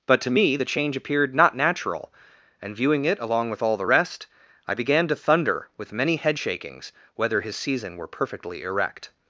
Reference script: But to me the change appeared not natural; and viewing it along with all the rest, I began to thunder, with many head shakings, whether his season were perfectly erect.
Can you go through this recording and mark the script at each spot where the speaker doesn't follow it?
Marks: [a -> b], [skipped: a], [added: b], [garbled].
But to me the change appeared not natural; and viewing it along with all the rest, I began to thunder, with many head shakings, whether his season were perfectly erect.